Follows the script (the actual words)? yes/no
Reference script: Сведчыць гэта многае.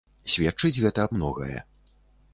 yes